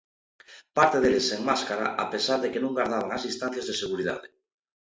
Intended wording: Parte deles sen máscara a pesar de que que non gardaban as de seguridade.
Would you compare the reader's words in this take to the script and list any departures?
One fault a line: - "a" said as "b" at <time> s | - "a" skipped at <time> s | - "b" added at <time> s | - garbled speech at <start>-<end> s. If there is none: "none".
- "que" skipped at 2.6 s
- "distancias" added at 3.3 s